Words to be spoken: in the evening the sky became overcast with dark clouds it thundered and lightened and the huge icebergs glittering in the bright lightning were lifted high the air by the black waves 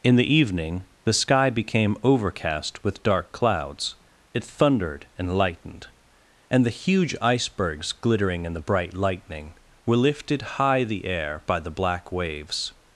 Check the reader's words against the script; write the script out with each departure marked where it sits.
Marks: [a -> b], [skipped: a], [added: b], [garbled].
in the evening the sky became overcast with dark clouds it thundered and lightened and the huge icebergs glittering in the bright lightning were lifted high the air by the black waves